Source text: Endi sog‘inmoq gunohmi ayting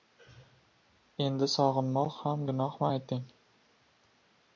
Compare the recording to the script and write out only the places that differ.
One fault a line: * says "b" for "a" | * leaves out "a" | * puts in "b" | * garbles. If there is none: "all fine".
* puts in "ham"